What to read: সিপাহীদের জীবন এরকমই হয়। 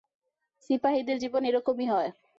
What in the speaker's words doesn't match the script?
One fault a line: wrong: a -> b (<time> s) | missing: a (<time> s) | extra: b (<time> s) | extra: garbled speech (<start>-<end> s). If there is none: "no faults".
no faults